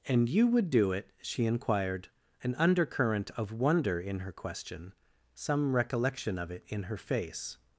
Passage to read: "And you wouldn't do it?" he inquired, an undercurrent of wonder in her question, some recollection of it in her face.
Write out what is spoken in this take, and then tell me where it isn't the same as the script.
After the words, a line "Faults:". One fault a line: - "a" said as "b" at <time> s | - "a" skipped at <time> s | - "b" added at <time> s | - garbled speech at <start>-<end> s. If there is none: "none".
"And you would do it?" she inquired, an undercurrent of wonder in her question, some recollection of it in her face.
Faults:
- "wouldn't" said as "would" at 0.5 s
- "he" said as "she" at 1.2 s